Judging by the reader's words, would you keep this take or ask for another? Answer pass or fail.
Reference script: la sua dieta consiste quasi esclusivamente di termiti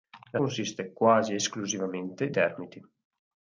fail